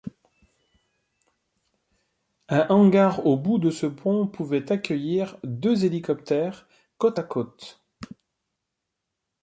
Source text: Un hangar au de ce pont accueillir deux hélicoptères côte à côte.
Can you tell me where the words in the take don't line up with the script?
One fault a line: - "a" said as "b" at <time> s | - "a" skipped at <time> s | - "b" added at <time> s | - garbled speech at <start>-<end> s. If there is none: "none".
- "bout" added at 3.4 s
- "pouvait" added at 4.2 s